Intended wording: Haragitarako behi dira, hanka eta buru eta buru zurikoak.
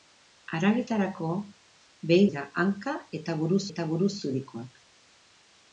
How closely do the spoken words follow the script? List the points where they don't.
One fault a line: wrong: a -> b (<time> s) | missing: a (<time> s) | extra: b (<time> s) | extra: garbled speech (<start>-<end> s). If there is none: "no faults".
no faults